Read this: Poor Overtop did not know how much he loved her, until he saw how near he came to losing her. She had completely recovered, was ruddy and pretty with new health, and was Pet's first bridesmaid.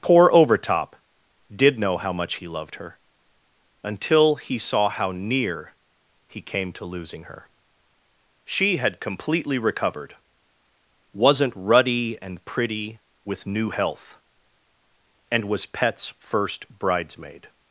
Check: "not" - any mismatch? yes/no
yes